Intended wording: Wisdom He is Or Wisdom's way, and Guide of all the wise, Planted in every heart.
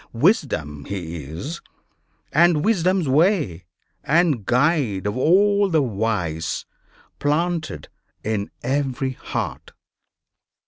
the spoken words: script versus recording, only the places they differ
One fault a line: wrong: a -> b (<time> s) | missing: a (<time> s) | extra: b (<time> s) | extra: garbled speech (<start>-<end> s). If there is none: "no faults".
wrong: Or -> And (2.3 s)